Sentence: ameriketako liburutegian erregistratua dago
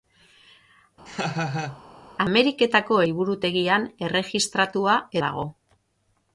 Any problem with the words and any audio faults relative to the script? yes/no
yes